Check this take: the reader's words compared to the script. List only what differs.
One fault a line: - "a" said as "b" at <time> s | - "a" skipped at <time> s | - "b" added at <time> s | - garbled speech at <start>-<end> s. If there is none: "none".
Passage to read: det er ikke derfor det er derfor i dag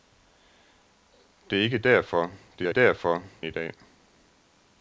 none